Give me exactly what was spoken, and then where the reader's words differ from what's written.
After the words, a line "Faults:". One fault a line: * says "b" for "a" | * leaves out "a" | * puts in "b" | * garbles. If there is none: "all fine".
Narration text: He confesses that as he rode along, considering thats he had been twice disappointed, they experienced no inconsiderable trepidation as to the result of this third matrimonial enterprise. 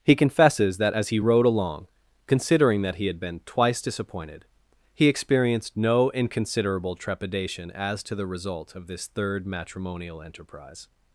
He confesses that as he rode along, considering that he had been twice disappointed, he experienced no inconsiderable trepidation as to the result of this third matrimonial enterprise.
Faults:
* says "that" for "thats"
* says "he" for "they"